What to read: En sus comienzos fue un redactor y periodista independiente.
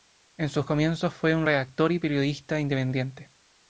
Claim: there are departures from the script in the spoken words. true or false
false